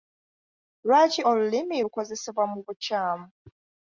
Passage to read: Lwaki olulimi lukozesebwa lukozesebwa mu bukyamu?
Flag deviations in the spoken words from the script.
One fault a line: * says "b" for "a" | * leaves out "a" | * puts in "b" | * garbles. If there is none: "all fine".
* leaves out "lukozesebwa"